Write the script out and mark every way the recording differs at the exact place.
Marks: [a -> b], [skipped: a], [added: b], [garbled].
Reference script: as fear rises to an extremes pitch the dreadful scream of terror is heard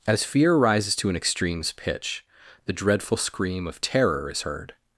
as fear rises to an extremes pitch the dreadful scream of terror is heard